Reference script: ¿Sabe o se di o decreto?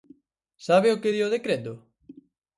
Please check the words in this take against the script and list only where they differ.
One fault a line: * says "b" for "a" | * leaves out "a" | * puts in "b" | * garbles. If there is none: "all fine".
* says "que" for "se"